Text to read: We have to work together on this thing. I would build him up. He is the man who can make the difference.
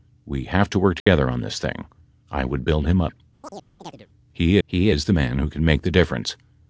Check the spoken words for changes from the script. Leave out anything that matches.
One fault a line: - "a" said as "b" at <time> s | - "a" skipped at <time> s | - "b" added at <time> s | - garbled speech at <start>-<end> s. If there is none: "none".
- "he" added at 4.7 s